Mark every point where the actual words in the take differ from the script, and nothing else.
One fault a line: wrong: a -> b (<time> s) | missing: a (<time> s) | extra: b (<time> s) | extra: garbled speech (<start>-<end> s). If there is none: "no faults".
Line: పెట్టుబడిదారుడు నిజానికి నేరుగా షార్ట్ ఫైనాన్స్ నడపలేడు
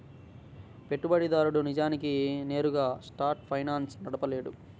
no faults